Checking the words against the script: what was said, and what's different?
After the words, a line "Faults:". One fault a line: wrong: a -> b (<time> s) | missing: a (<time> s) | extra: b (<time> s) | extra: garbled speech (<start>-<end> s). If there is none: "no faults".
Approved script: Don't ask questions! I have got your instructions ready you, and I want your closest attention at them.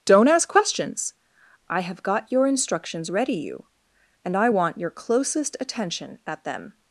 Don't ask questions! I have got your instructions ready you, and I want your closest attention at them.
Faults:
no faults